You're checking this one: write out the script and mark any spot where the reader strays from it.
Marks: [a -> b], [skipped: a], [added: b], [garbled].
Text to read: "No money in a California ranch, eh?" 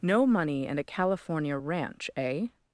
"No money [in -> and] a California ranch, eh?"